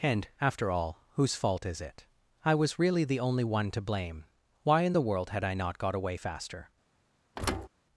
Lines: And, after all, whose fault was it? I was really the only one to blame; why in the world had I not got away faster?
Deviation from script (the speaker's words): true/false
true